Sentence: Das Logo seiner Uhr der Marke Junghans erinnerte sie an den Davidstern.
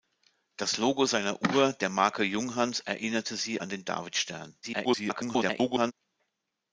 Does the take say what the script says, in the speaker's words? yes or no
no